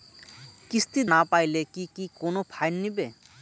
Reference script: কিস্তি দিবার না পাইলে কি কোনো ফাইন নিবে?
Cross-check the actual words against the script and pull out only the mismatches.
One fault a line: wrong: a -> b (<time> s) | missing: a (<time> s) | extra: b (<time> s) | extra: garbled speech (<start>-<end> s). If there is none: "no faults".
missing: দিবার (1.0 s)
extra: কি (1.9 s)